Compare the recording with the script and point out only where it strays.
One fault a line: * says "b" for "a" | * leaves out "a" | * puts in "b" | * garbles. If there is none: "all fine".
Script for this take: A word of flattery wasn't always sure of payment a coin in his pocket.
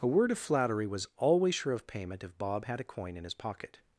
* says "was" for "wasn't"
* puts in "if Bob had"